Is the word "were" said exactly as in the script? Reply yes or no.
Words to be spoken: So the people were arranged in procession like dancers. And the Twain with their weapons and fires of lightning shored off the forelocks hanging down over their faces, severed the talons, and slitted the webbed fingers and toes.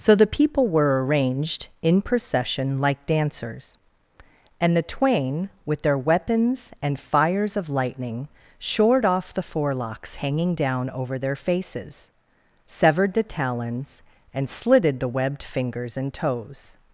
yes